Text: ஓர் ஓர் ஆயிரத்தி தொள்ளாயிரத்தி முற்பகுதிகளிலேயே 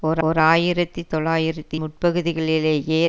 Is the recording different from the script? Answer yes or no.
no